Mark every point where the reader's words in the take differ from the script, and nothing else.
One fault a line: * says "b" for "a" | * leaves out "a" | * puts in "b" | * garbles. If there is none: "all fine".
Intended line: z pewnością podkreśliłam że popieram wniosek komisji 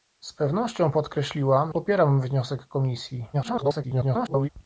* leaves out "że"
* garbles